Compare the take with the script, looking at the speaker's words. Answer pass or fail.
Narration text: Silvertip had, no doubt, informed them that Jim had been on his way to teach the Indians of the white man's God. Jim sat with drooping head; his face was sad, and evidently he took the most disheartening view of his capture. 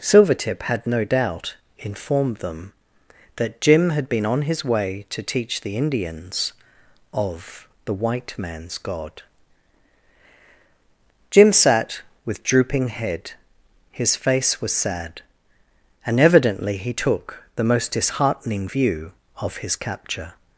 pass